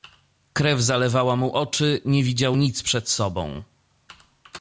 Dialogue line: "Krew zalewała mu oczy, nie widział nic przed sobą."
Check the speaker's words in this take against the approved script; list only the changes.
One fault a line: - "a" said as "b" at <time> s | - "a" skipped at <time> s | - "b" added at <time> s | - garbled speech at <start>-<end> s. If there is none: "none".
none